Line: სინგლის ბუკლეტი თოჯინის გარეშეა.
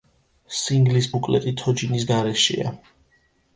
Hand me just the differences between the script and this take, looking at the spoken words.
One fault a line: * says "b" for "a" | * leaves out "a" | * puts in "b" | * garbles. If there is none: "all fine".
all fine